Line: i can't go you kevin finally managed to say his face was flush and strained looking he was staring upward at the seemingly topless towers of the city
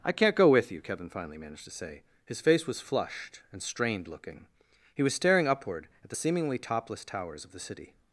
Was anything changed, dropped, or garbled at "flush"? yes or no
yes